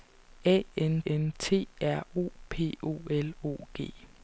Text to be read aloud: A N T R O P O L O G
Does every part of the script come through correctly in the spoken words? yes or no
no